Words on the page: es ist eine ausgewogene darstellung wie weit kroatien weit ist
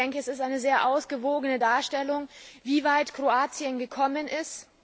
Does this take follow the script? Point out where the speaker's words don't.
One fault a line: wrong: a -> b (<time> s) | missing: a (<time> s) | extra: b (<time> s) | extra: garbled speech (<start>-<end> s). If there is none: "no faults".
extra: sehr (0.6 s)
wrong: weit -> gekommen (3.8 s)